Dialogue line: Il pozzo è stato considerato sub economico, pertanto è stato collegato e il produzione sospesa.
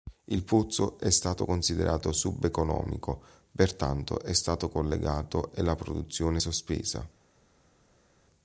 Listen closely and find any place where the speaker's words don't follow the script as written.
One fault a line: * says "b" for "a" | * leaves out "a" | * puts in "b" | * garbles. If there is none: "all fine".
* says "la" for "il"